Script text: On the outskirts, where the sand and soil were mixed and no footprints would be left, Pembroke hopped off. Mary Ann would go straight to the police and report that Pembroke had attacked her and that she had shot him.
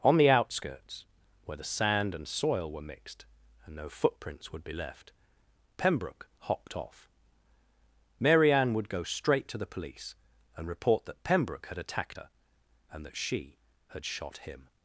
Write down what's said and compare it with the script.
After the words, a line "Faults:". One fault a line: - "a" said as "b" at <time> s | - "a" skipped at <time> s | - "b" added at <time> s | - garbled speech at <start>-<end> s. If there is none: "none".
On the outskirts, where the sand and soil were mixed and no footprints would be left, Pembroke hopped off. Mary Ann would go straight to the police and report that Pembroke had attacked her and that she had shot him.
Faults:
none